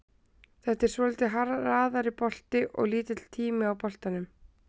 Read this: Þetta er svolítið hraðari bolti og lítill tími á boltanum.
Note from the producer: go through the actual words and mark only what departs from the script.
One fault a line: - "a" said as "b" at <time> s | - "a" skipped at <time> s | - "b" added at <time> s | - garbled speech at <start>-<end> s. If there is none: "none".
none